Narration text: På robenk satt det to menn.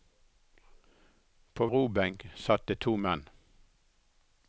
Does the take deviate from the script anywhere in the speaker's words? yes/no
no